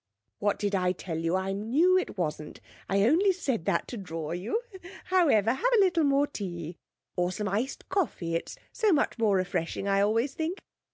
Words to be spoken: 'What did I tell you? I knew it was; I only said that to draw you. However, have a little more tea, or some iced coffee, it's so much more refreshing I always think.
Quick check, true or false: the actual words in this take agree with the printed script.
false